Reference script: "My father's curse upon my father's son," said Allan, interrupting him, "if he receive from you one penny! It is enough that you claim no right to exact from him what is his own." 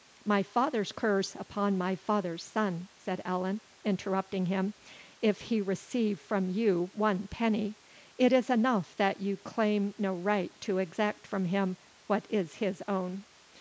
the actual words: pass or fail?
pass